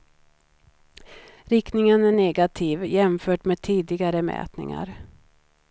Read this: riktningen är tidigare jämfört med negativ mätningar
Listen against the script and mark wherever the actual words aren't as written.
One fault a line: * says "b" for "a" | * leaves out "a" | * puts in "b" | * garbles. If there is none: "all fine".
* says "negativ" for "tidigare"
* says "tidigare" for "negativ"